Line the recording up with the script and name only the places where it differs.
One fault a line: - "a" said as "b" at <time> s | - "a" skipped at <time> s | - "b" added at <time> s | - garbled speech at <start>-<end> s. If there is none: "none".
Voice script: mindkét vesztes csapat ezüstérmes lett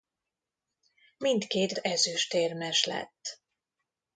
- "vesztes csapat" skipped at 1.7 s